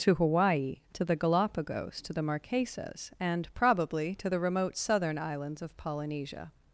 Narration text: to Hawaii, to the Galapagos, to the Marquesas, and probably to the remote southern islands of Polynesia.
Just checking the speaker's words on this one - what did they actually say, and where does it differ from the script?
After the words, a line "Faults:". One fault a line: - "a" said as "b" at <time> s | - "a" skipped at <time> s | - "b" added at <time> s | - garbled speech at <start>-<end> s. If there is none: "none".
to Hawaii, to the Galapagos, to the Marquesas, and probably to the remote southern islands of Polynesia.
Faults:
none